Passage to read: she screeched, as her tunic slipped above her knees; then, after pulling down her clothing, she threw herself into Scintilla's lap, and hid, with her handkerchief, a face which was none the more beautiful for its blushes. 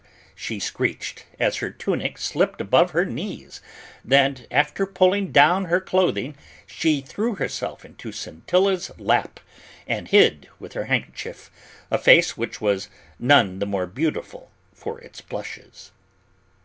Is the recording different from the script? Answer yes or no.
no